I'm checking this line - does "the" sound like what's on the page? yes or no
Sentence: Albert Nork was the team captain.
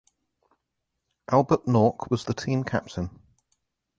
yes